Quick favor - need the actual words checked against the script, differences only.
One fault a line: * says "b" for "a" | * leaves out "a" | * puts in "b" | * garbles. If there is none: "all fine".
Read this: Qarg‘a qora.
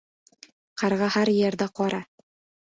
* puts in "har yerda"